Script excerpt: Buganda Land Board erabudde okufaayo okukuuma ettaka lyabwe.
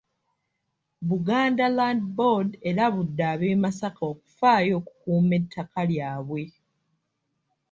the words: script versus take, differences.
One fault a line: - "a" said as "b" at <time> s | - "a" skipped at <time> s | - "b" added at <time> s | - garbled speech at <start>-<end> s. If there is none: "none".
- "ab'e Masaka" added at 3.3 s